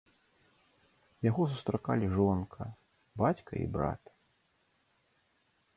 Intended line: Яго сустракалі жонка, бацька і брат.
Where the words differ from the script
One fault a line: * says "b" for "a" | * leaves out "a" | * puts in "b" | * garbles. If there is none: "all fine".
all fine